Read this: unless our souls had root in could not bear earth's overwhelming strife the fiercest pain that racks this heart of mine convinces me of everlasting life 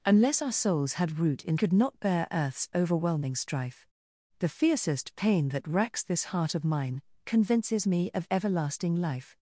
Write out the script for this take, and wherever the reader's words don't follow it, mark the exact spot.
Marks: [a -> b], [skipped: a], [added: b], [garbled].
unless our souls had root in could not bear earth's overwhelming strife the fiercest pain that racks this heart of mine convinces me of everlasting life